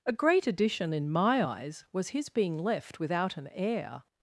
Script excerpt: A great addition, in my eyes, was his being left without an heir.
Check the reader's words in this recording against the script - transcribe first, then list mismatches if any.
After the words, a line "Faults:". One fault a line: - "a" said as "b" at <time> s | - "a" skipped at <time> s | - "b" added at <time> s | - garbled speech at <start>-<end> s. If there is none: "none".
A great addition, in my eyes, was his being left without an heir.
Faults:
none